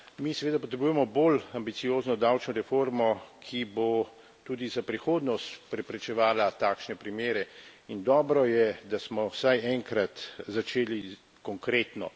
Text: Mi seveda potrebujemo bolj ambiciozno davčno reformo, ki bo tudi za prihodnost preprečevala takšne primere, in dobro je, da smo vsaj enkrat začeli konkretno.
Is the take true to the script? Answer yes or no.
yes